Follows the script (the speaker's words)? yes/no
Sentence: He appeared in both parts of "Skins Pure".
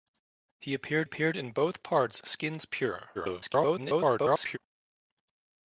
no